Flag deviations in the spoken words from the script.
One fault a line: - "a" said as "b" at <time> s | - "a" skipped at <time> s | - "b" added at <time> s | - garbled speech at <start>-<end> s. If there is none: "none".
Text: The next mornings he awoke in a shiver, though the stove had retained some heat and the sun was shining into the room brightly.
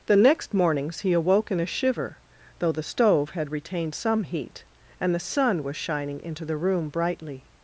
none